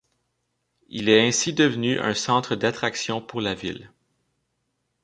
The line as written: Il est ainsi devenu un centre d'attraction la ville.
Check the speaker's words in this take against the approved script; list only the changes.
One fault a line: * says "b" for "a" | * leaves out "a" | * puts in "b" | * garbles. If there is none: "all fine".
* puts in "pour"